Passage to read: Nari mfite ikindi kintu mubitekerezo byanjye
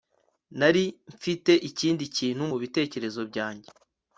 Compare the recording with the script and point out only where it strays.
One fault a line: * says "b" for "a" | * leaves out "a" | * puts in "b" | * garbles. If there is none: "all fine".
all fine